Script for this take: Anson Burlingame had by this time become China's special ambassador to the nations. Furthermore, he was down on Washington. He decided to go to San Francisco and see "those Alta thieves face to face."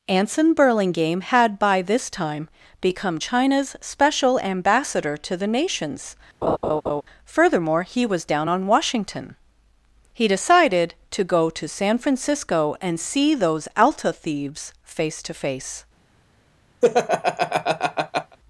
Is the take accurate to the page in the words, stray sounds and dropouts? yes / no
no